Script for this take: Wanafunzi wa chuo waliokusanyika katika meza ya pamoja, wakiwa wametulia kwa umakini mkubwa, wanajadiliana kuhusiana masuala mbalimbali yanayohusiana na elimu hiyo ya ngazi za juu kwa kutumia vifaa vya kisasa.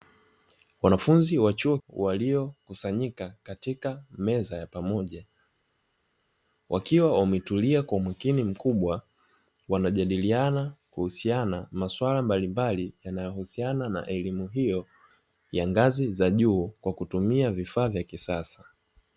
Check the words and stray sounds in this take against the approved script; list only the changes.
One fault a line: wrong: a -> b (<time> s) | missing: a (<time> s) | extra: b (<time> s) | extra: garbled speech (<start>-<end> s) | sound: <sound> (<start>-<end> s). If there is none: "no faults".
no faults